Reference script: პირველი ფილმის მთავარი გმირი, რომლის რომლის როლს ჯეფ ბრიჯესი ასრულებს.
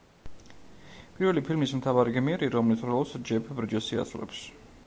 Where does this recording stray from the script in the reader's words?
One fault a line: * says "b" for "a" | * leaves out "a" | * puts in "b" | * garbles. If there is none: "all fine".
* leaves out "რომლის"